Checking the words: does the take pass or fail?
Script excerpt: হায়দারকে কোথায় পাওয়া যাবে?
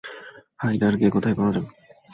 pass